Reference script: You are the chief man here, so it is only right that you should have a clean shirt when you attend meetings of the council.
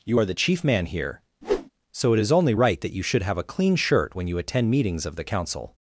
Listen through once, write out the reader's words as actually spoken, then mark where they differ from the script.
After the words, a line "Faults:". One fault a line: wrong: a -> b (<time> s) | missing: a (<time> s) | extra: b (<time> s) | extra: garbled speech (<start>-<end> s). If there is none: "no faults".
You are the chief man here, so it is only right that you should have a clean shirt when you attend meetings of the council.
Faults:
no faults